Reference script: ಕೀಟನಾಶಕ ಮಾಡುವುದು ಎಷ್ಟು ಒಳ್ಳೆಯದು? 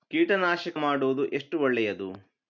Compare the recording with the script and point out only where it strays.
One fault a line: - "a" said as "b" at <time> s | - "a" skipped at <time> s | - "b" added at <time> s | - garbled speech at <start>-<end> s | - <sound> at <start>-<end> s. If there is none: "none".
none